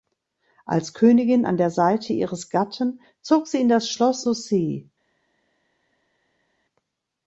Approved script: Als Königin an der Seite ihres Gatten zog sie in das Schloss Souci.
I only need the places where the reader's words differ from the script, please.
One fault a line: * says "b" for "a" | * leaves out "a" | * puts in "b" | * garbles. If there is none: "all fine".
all fine